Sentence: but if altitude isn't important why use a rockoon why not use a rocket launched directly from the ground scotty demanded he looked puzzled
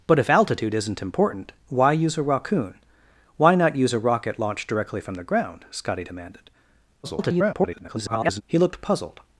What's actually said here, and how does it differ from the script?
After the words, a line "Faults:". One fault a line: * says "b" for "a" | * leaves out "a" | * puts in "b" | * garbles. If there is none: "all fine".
but if altitude isn't important why use a rockoon why not use a rocket launched directly from the ground scotty demanded [garbled] he looked puzzled
Faults:
* garbles